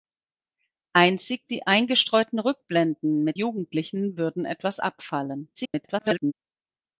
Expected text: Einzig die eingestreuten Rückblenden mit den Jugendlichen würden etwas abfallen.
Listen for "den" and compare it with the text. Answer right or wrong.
wrong